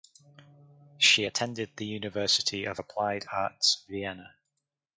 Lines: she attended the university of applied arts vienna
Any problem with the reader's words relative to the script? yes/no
no